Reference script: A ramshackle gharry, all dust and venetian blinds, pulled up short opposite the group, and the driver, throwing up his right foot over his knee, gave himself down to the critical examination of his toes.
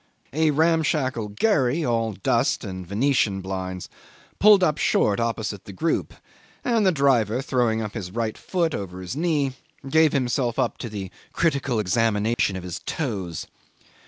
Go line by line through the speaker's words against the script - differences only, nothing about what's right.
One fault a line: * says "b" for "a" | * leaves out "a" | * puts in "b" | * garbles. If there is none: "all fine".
* says "up" for "down"